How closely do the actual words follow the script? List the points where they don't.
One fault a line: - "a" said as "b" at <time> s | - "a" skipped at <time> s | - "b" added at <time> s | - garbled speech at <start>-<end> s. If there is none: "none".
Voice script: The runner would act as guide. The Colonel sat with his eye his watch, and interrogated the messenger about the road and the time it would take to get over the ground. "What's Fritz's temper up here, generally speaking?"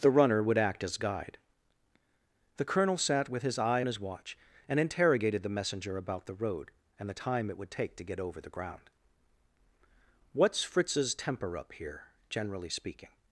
none